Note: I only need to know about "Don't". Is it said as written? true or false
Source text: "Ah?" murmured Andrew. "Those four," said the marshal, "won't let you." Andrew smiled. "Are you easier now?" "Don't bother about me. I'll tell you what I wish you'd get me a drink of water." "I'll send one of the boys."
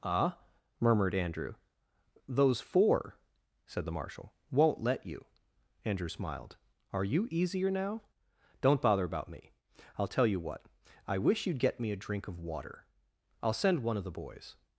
true